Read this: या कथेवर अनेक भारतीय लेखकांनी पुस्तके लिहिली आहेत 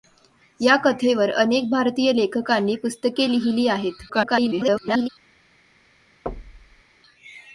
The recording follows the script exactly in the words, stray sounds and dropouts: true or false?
false